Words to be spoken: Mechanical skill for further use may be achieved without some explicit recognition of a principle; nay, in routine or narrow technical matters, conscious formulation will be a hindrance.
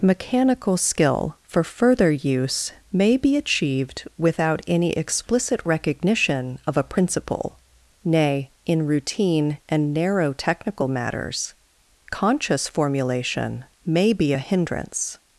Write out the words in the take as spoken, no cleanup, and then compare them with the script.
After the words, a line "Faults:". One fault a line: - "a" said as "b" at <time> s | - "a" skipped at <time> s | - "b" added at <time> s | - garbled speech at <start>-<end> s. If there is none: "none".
Mechanical skill for further use may be achieved without any explicit recognition of a principle; nay, in routine and narrow technical matters, conscious formulation may be a hindrance.
Faults:
- "some" said as "any" at 4.7 s
- "or" said as "and" at 9.7 s
- "will" said as "may" at 13.8 s